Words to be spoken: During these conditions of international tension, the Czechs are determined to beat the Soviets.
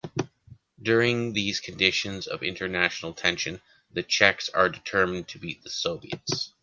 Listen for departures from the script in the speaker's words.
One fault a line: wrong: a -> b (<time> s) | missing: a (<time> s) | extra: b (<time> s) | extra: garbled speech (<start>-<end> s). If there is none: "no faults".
no faults